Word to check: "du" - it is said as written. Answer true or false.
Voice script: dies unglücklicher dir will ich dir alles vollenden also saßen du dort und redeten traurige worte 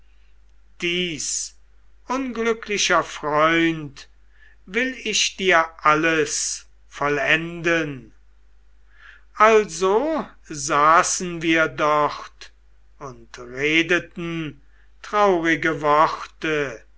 false